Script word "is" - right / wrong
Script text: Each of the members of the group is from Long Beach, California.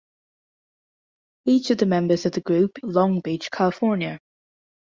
wrong